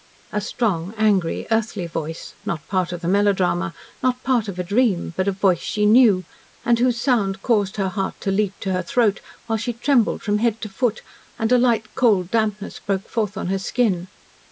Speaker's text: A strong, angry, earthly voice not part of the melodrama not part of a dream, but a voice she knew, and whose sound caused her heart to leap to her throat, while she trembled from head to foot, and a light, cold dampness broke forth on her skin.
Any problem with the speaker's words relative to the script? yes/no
no